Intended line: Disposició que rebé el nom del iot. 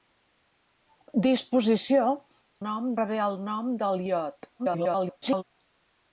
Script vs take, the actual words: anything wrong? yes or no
yes